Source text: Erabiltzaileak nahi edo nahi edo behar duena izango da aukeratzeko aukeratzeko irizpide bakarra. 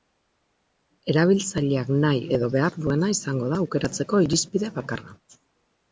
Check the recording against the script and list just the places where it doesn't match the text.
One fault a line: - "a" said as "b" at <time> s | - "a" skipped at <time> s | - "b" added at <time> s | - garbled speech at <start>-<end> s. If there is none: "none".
- "nahi edo" skipped at 2.5 s
- "aukeratzeko" skipped at 4.2 s